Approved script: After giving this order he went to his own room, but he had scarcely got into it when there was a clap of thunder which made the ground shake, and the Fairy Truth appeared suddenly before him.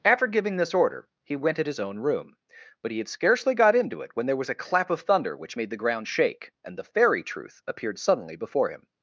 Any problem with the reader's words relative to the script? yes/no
yes